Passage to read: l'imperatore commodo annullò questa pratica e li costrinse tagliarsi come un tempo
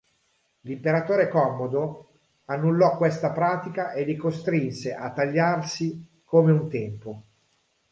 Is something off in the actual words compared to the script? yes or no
yes